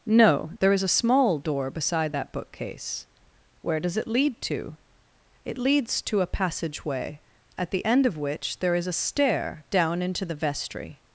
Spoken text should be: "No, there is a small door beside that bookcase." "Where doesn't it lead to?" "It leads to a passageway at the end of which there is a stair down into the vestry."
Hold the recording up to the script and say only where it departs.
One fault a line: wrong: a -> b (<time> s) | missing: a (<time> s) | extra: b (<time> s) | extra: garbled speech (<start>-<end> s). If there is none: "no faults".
wrong: doesn't -> does (3.8 s)